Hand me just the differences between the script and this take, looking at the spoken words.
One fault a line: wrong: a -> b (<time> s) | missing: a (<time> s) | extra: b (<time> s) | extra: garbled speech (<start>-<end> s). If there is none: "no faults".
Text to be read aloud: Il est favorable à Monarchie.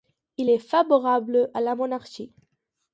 extra: la (1.6 s)